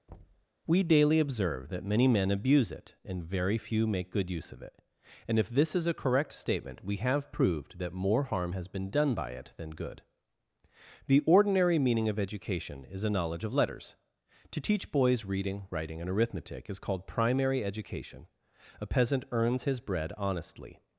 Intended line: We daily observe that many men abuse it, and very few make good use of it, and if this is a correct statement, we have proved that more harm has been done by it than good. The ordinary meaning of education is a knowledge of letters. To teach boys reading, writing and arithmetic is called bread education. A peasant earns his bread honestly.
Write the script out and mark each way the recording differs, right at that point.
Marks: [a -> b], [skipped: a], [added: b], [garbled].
We daily observe that many men abuse it, and very few make good use of it, and if this is a correct statement, we have proved that more harm has been done by it than good. The ordinary meaning of education is a knowledge of letters. To teach boys reading, writing and arithmetic is called [bread -> primary] education. A peasant earns his bread honestly.